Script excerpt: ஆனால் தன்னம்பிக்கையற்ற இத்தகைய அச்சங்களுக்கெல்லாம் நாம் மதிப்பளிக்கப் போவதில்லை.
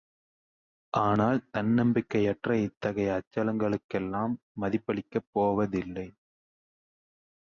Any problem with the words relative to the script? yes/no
yes